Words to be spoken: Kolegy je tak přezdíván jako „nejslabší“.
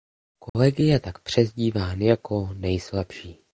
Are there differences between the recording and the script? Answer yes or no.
no